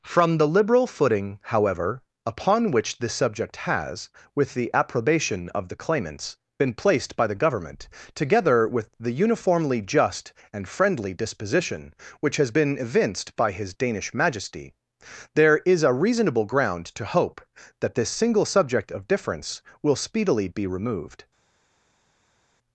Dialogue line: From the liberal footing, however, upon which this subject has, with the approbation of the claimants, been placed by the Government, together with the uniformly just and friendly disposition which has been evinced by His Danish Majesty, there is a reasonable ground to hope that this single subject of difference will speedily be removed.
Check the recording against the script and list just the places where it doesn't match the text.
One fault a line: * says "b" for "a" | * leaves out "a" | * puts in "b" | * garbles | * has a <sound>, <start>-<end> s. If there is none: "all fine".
all fine